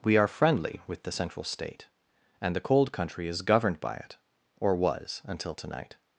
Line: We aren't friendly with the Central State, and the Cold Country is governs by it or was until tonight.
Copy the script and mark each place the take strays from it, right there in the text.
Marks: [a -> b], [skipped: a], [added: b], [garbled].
We [aren't -> are] friendly with the Central State, and the Cold Country is [governs -> governed] by it or was until tonight.